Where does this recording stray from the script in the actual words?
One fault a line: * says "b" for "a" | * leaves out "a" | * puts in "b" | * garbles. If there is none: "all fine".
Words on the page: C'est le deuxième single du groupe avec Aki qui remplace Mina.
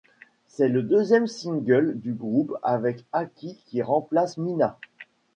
all fine